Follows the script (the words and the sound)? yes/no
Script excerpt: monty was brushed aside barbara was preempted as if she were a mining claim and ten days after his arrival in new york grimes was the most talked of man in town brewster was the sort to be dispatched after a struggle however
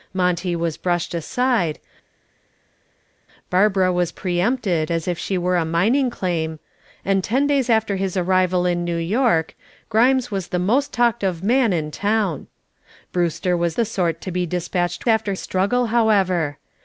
yes